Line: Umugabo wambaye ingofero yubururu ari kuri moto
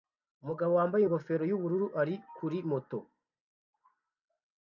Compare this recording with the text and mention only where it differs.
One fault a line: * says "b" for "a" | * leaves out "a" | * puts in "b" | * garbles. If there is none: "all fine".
all fine